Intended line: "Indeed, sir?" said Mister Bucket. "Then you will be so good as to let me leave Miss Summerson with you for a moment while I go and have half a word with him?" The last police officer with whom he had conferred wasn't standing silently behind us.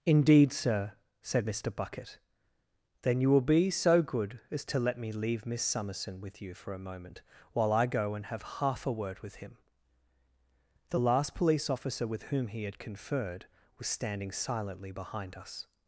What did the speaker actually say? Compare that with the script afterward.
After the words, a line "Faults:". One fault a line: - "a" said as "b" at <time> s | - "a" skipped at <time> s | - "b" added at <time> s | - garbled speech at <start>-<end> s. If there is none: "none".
"Indeed, sir?" said Mister Bucket. "Then you will be so good as to let me leave Miss Summerson with you for a moment while I go and have half a word with him?" The last police officer with whom he had conferred was standing silently behind us.
Faults:
- "wasn't" said as "was" at 13.8 s